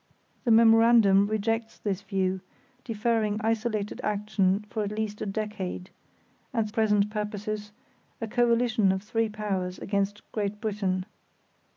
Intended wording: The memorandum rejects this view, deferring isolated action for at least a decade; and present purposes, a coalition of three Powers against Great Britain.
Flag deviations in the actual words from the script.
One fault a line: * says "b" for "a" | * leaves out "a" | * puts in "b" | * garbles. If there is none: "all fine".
all fine